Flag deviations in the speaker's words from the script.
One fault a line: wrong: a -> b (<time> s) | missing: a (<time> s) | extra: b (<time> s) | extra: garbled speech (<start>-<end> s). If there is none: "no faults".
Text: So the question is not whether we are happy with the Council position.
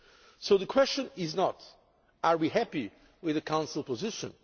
no faults